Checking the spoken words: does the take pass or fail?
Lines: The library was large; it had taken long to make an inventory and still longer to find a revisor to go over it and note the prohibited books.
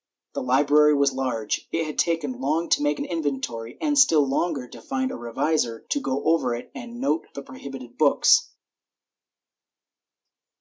pass